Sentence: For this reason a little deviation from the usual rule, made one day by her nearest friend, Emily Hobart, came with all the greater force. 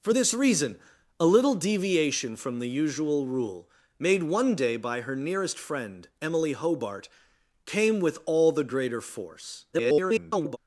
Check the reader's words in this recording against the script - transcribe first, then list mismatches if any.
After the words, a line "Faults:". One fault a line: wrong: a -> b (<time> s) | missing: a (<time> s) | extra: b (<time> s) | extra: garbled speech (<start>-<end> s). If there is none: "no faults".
For this reason a little deviation from the usual rule, made one day by her nearest friend, Emily Hobart, came with all the greater force. [garbled]
Faults:
extra: garbled speech (9.7-10.6 s)